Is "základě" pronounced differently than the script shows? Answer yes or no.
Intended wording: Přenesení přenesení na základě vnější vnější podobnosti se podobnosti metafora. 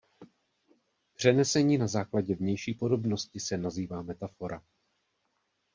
no